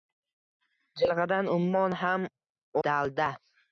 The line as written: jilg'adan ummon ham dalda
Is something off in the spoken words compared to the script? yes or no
no